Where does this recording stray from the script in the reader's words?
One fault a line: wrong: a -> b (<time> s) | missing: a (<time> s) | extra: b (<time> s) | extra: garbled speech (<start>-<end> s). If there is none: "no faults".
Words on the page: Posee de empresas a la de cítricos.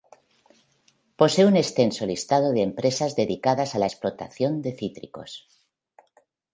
extra: un extenso listado (1.4 s)
extra: dedicadas (3.2 s)
extra: explotación (3.8 s)